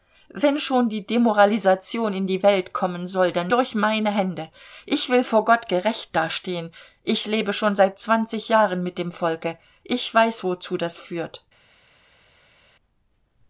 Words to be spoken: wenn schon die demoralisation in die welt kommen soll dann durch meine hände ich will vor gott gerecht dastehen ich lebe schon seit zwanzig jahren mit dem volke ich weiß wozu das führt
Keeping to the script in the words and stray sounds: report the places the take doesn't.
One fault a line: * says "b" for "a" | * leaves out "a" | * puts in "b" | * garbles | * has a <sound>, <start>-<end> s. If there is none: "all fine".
all fine